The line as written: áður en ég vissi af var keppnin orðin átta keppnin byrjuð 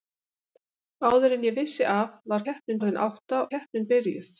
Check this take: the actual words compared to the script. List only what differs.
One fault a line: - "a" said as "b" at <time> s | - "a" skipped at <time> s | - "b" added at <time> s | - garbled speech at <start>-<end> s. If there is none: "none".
none